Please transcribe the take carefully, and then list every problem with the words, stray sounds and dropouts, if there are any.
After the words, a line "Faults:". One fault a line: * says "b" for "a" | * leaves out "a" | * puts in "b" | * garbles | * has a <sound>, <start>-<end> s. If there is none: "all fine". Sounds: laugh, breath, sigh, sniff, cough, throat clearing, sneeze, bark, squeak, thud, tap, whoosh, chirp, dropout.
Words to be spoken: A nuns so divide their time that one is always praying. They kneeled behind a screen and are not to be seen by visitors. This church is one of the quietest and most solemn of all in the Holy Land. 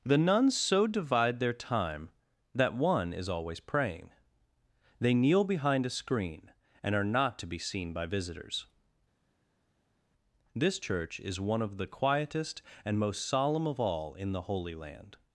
The nuns so divide their time that one is always praying. They kneel behind a screen and are not to be seen by visitors. This church is one of the quietest and most solemn of all in the Holy Land.
Faults:
* says "The" for "A"
* says "kneel" for "kneeled"